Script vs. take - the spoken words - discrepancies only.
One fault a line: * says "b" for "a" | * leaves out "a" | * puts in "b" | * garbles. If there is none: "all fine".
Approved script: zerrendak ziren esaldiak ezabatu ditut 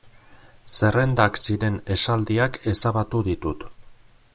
all fine